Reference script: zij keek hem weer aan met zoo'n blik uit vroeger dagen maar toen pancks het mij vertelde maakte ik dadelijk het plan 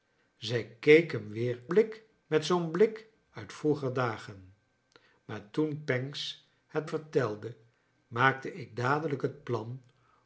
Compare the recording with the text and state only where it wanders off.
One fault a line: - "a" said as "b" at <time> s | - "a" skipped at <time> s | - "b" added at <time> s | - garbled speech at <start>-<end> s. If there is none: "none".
- "aan" said as "blik" at 1.7 s
- "mij" skipped at 6.9 s